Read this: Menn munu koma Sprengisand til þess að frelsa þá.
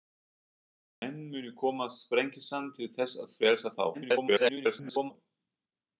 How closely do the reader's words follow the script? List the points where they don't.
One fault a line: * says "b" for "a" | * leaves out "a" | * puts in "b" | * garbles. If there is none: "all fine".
* garbles